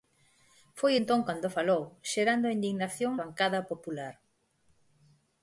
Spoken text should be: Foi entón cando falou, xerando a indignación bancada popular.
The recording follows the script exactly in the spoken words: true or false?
true